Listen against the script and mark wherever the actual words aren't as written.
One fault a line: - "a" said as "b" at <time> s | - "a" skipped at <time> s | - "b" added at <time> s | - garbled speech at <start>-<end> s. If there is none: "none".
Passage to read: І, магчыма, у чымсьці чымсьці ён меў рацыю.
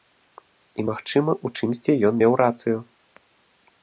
- "чымсьці" skipped at 1.9 s